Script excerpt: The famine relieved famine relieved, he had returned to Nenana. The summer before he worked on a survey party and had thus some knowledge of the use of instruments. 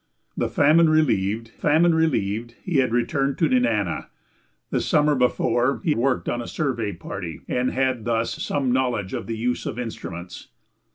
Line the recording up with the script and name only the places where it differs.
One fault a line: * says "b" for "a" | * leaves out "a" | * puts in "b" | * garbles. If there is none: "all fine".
all fine